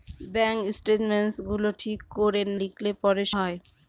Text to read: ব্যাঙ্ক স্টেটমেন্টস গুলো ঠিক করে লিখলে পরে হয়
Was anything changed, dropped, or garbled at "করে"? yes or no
no